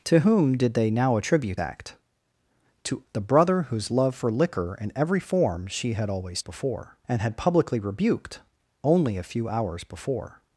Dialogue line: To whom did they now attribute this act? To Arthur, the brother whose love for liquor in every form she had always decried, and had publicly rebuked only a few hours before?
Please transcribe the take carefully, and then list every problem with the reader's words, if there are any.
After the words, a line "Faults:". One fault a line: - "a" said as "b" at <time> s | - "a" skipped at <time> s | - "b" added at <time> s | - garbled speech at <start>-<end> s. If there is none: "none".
To whom did they now attribute act? To The brother whose love for liquor in every form she had always before, and had publicly rebuked only a few hours before?
Faults:
- "this" skipped at 1.6 s
- "Arthur" skipped at 3.0 s
- "decried" said as "before" at 6.4 s